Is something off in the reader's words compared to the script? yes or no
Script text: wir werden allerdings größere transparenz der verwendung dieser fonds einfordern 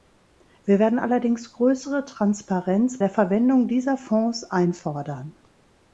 no